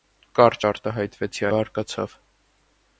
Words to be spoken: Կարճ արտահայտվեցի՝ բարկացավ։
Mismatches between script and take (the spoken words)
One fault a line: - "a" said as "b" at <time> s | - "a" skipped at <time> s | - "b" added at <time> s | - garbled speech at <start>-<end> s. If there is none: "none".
none